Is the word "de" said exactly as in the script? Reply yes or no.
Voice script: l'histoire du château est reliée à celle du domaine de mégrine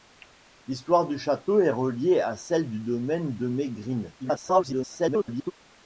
yes